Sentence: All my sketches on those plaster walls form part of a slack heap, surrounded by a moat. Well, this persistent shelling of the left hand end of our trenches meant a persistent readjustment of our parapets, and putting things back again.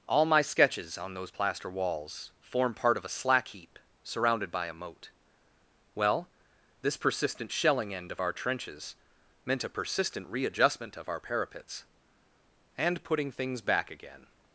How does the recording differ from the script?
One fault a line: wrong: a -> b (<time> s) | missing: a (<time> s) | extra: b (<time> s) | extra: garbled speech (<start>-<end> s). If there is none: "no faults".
missing: of the left hand (7.9 s)